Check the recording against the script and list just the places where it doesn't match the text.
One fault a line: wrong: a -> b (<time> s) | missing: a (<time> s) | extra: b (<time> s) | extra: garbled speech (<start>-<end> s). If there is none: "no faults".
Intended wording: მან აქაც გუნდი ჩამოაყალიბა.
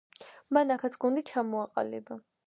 no faults